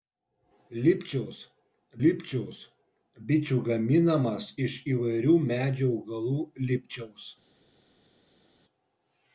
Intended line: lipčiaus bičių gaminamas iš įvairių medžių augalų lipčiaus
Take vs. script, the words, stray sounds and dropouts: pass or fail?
fail